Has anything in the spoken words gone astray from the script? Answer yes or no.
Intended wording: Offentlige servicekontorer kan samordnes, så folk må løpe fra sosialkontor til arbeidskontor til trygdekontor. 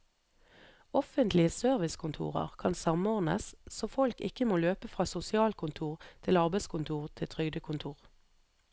yes